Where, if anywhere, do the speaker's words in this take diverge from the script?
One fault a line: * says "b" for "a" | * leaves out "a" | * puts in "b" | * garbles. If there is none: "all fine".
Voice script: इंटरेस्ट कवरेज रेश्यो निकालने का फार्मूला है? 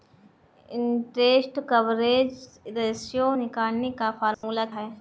all fine